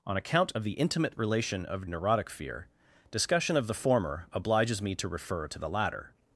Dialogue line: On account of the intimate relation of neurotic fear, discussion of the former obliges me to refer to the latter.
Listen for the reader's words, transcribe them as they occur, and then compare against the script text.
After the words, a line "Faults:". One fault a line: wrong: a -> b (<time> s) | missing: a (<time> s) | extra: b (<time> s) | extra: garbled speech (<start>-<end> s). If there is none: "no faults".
On account of the intimate relation of neurotic fear, discussion of the former obliges me to refer to the latter.
Faults:
no faults